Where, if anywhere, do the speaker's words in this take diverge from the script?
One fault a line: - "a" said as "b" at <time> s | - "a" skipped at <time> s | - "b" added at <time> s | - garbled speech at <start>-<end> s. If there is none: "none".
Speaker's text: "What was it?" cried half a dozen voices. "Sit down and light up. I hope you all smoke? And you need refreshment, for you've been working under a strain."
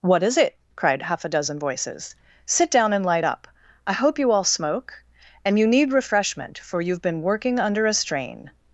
- "was" said as "is" at 0.2 s